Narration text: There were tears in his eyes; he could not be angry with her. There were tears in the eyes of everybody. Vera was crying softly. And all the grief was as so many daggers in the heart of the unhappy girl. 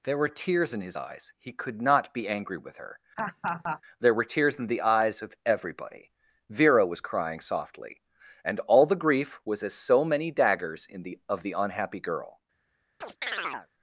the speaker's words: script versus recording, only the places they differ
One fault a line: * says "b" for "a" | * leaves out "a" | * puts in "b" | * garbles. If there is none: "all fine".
* leaves out "heart"